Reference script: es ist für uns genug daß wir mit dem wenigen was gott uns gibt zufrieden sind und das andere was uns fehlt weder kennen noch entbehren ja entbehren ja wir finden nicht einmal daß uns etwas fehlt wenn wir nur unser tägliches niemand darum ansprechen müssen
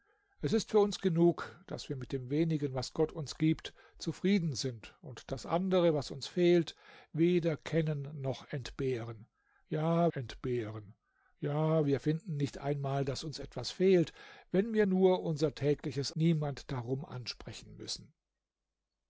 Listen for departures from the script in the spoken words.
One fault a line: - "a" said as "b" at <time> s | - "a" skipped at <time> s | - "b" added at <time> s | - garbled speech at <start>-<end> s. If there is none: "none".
none